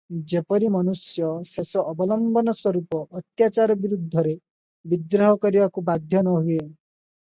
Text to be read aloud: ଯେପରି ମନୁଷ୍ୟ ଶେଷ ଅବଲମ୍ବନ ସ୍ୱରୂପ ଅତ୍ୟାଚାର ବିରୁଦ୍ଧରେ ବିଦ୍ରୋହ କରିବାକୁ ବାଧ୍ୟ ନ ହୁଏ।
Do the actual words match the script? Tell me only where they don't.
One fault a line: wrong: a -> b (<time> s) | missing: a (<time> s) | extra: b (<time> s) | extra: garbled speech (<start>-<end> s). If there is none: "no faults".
no faults